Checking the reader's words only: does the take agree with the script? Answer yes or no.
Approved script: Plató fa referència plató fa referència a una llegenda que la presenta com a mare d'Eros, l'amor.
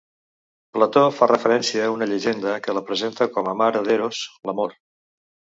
no